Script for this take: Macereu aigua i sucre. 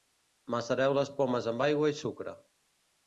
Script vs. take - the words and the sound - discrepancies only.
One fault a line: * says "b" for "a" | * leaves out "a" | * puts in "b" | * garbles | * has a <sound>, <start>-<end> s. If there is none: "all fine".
* puts in "les pomes amb"